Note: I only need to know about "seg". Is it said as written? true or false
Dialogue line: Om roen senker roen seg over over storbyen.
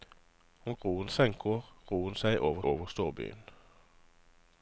true